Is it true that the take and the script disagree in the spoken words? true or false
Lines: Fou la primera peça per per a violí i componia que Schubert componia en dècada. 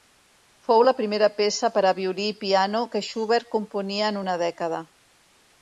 true